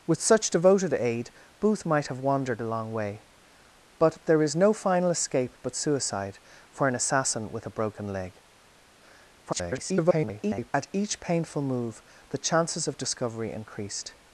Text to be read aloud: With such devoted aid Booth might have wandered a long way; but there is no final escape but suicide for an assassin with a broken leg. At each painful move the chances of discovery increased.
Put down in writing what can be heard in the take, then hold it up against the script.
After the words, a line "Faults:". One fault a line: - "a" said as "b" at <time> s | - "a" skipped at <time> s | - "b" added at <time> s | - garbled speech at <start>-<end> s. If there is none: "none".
With such devoted aid Booth might have wandered a long way; but there is no final escape but suicide for an assassin with a broken leg. [garbled] At each painful move the chances of discovery increased.
Faults:
- garbled speech at 9.5-10.7 s